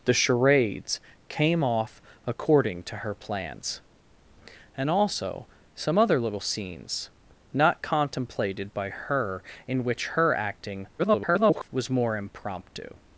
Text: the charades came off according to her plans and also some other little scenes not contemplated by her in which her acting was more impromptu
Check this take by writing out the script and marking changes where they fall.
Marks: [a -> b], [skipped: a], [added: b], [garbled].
the charades came off according to her plans and also some other little scenes not contemplated by her in which her acting [garbled] was more impromptu